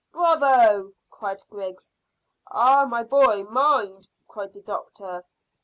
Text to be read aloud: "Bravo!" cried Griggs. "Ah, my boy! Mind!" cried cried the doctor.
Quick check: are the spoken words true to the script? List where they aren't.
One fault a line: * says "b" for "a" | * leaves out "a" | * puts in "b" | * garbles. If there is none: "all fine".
* leaves out "cried"